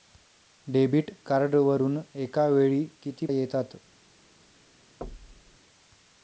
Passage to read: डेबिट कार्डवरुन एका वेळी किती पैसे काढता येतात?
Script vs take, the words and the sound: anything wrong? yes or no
yes